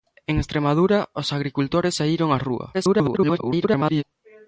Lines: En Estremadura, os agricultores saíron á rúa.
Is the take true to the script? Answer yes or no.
no